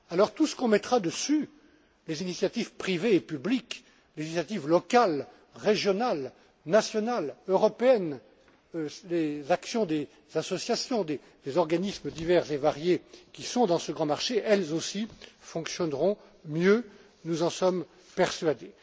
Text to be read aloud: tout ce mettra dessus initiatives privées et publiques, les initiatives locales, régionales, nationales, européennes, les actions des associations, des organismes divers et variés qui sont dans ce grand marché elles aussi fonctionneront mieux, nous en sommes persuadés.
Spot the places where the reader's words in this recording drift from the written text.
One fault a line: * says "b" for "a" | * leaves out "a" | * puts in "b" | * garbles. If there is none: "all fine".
* puts in "qu'on"
* puts in "les"